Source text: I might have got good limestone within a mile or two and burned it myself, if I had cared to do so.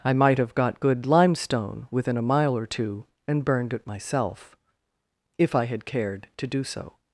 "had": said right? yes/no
yes